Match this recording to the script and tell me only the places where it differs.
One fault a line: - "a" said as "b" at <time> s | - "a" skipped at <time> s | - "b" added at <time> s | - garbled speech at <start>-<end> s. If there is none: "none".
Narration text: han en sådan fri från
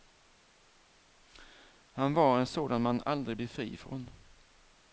- "var" added at 2.1 s
- "man aldrig blir" added at 2.8 s